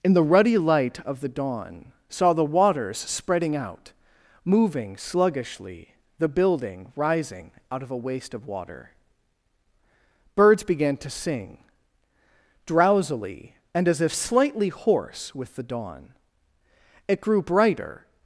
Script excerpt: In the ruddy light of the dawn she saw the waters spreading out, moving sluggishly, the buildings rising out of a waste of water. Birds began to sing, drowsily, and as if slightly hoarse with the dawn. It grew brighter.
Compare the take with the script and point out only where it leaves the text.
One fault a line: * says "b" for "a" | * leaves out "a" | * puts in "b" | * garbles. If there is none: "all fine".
* leaves out "she"
* says "building" for "buildings"